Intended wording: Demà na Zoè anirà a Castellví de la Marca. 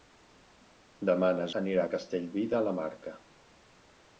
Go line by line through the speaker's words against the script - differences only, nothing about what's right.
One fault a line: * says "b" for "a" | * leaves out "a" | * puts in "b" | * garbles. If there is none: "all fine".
* leaves out "Zoè"